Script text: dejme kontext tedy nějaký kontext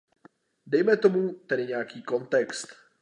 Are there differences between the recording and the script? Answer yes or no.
yes